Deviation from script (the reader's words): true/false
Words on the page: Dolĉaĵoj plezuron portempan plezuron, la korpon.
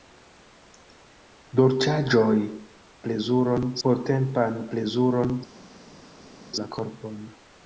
false